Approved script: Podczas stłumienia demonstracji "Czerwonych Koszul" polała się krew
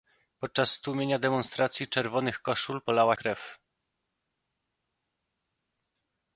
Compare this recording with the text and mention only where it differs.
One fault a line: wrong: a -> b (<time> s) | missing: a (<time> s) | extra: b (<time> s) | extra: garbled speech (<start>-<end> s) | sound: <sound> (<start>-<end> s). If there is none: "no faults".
missing: się (3.2 s)